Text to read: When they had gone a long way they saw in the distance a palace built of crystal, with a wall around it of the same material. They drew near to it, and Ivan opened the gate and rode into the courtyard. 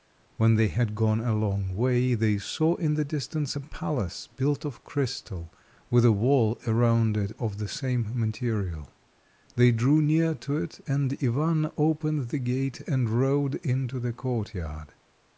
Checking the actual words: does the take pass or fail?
pass